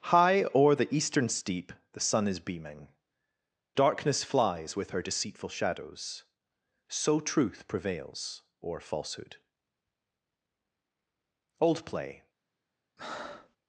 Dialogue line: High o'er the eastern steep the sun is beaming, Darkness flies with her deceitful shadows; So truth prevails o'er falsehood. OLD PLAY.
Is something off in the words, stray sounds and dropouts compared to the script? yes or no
yes